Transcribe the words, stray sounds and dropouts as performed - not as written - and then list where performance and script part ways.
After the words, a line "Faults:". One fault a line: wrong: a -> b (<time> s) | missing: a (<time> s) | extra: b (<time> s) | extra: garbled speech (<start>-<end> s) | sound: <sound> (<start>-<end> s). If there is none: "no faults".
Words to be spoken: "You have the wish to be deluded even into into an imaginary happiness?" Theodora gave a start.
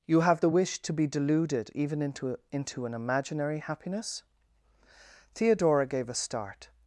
"You have the wish to be deluded even into into an imaginary happiness?" Theodora gave a start.
Faults:
no faults